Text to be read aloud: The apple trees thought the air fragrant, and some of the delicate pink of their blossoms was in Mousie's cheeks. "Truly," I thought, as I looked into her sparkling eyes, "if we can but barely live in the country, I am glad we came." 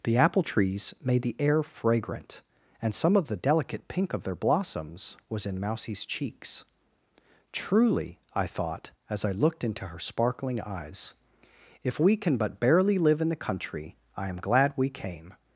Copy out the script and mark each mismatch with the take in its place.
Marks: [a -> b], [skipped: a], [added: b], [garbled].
The apple trees [thought -> made] the air fragrant, and some of the delicate pink of their blossoms was in Mousie's cheeks. "Truly," I thought, as I looked into her sparkling eyes, "if we can but barely live in the country, I am glad we came."